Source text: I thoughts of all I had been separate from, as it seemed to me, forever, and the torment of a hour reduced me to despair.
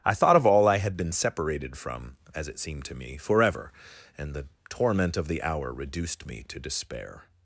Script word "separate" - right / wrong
wrong